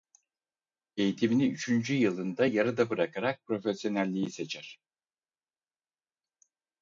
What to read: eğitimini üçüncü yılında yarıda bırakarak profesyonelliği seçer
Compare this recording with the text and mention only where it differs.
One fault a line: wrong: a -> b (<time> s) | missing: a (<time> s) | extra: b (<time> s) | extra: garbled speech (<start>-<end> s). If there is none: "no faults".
no faults